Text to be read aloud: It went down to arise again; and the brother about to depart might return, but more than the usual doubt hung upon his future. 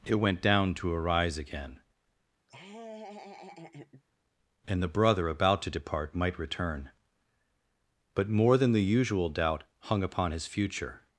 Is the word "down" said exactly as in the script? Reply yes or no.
yes